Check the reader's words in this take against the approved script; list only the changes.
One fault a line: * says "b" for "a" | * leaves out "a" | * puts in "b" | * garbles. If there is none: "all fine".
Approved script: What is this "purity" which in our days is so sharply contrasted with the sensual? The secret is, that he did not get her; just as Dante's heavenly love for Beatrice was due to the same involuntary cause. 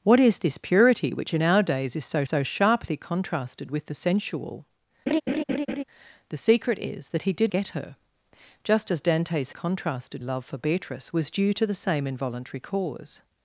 * puts in "so"
* leaves out "not"
* says "contrasted" for "heavenly"